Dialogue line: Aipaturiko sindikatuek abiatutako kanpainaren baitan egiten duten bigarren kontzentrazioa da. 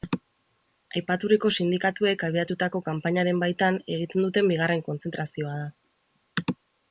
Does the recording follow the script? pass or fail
pass